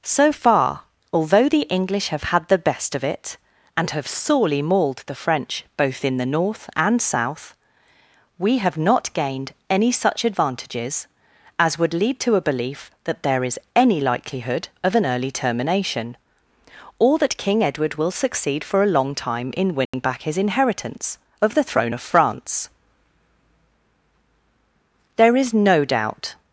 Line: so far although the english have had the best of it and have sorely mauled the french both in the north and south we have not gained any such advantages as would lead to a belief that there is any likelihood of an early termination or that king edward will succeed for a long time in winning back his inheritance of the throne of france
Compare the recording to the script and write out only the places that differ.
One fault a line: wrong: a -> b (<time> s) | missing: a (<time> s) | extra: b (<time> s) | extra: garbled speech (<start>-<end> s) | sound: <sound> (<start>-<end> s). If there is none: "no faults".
sound: dropout (19.9-19.9 s)
extra: there is no doubt (25.2 s)